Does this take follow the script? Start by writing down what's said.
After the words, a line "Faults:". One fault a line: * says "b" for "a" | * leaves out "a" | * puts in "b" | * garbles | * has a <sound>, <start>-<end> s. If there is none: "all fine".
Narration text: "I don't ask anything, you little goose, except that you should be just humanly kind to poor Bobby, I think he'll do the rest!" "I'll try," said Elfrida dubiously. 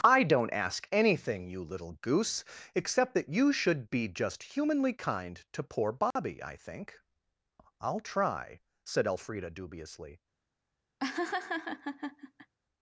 "I don't ask anything, you little goose, except that you should be just humanly kind to poor Bobby, I think!" "I'll try," said Elfrida dubiously.
Faults:
* has a dropout, 6.1-6.2 s
* leaves out "he'll do the rest"
* has a laugh, 11.0-12.5 s